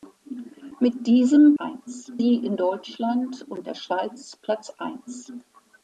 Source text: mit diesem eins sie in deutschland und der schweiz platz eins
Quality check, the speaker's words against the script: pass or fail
pass